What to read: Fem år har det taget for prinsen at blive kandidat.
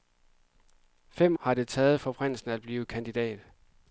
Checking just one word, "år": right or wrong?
wrong